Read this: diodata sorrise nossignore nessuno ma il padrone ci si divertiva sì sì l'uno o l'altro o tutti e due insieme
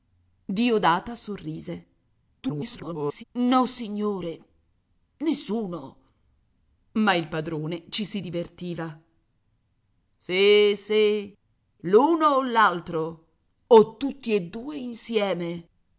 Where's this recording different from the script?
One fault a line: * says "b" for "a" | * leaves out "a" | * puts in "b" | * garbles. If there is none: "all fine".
* garbles